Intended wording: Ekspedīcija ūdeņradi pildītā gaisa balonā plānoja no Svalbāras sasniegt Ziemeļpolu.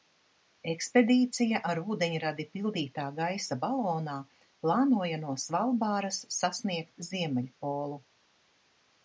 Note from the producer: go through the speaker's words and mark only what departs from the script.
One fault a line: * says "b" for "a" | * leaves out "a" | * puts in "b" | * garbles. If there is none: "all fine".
* puts in "ar"